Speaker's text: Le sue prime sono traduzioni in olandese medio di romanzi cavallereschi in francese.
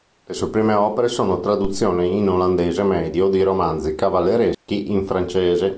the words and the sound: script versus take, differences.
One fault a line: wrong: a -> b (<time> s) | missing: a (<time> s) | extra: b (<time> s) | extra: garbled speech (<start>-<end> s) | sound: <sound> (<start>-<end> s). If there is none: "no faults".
extra: opere (0.7 s)
sound: dropout (4.5-4.7 s)